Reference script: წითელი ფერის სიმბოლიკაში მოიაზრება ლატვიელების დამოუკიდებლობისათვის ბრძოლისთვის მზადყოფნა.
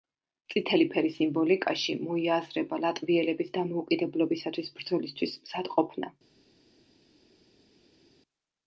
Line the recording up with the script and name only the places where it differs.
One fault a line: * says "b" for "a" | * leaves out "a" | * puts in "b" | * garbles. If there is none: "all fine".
all fine